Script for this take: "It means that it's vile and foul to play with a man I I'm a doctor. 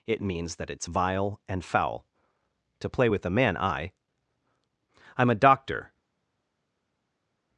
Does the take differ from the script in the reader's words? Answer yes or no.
no